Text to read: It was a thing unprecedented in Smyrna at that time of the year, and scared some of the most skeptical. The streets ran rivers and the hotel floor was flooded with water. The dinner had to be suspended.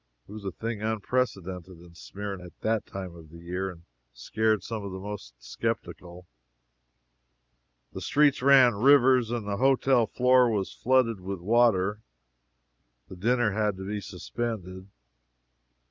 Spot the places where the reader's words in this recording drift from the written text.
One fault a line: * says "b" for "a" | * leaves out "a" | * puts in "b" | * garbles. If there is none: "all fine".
all fine